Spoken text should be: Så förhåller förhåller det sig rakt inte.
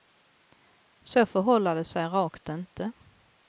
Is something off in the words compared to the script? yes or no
yes